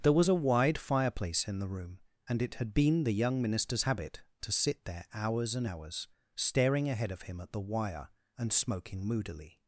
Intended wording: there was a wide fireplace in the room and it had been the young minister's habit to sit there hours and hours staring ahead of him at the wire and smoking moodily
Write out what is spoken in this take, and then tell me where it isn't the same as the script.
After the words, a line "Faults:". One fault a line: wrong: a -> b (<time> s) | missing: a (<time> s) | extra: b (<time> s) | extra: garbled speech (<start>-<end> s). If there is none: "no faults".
there was a wide fireplace in the room and it had been the young minister's habit to sit there hours and hours staring ahead of him at the wire and smoking moodily
Faults:
no faults